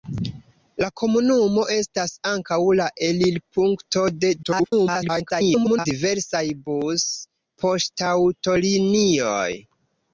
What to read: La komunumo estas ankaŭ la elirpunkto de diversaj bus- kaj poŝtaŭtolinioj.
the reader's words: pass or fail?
fail